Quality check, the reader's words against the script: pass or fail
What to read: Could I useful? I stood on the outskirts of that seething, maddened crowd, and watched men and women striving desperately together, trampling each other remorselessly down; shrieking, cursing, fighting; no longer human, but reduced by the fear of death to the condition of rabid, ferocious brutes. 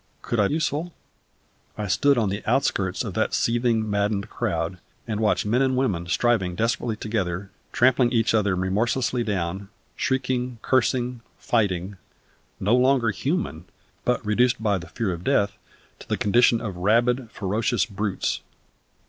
pass